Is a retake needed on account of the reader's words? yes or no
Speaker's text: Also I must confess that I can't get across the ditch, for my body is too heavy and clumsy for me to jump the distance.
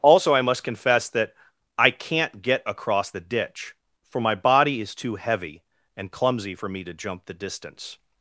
no